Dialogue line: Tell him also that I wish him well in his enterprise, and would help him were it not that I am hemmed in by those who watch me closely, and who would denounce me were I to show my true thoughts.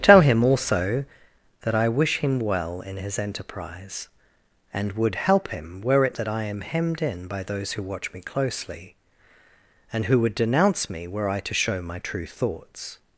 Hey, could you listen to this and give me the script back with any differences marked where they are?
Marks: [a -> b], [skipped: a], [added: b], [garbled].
Tell him also that I wish him well in his enterprise, and would help him were it [skipped: not] that I am hemmed in by those who watch me closely, and who would denounce me were I to show my true thoughts.